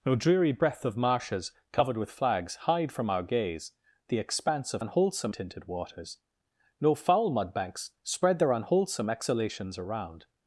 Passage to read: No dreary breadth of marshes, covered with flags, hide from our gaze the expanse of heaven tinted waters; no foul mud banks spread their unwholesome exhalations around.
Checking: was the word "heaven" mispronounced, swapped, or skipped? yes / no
yes